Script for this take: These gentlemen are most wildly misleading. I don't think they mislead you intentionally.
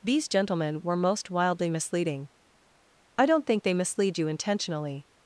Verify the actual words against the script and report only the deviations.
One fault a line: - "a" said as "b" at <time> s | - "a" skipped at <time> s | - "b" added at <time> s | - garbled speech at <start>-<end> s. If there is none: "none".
- "are" said as "were" at 0.8 s